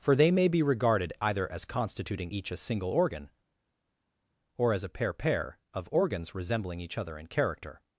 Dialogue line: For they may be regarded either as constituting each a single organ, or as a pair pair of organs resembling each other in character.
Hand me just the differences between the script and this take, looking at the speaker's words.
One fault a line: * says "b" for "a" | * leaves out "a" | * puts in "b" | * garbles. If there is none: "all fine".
all fine